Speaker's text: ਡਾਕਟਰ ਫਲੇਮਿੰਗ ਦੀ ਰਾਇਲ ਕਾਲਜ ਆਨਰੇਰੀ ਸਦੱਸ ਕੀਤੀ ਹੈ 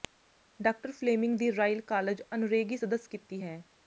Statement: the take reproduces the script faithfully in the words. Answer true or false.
true